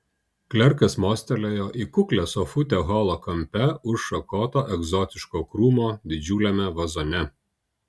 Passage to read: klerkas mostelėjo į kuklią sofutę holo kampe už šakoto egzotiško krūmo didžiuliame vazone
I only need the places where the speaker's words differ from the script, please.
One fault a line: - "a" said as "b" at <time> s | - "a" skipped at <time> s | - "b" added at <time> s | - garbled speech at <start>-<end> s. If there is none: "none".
none